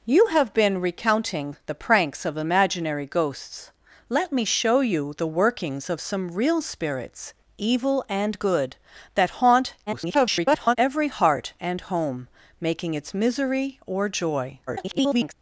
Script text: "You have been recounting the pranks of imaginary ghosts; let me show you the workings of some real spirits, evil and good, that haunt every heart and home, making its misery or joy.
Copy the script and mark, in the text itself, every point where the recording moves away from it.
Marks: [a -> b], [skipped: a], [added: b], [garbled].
"You have been recounting the pranks of imaginary ghosts; let me show you the workings of some real spirits, evil and good, that haunt [garbled] every heart and home, making its misery or joy. [garbled]